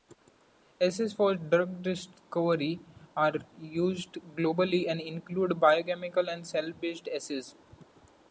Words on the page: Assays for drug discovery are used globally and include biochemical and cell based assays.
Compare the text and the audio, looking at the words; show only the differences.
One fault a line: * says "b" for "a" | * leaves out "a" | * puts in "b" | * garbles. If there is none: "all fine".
all fine